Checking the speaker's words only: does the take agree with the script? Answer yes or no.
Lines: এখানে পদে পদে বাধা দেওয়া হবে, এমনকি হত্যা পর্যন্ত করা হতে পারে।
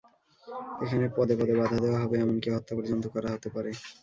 yes